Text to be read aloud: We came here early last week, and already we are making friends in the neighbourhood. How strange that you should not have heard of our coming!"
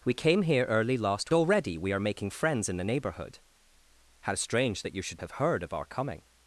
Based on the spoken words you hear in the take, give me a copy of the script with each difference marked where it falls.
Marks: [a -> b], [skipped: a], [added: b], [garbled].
We came here early last [skipped: week, and] already we are making friends in the neighbourhood. How strange that you should [skipped: not] have heard of our coming!"